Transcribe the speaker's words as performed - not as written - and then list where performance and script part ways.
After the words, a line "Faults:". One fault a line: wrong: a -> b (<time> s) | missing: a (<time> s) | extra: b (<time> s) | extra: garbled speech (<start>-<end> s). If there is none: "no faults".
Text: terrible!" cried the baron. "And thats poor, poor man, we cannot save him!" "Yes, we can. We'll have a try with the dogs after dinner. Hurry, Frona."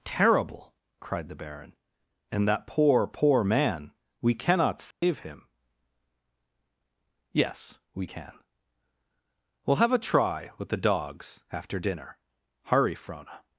terrible!" cried the baron. "And that poor, poor man, we cannot save him!" "Yes, we can. We'll have a try with the dogs after dinner. Hurry, Frona."
Faults:
wrong: thats -> that (2.5 s)